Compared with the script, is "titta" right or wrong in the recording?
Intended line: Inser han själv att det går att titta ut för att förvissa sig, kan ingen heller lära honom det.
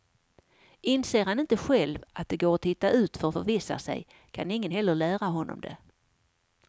right